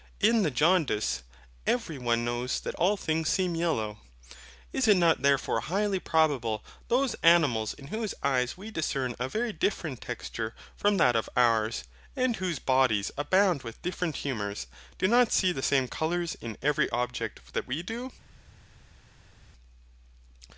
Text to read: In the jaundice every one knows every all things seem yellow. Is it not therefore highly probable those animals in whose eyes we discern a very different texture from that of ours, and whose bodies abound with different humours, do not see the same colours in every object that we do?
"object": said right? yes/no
yes